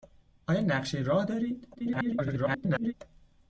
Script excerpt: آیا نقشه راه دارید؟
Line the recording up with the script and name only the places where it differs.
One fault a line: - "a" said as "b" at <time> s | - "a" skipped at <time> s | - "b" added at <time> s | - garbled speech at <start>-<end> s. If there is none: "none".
- garbled speech at 1.7-2.9 s